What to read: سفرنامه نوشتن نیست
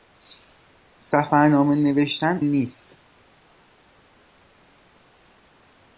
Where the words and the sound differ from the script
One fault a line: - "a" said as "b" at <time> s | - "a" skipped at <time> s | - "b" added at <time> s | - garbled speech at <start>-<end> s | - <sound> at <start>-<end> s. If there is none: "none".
none